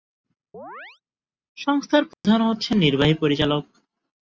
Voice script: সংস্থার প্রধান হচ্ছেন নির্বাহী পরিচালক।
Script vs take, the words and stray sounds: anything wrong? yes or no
yes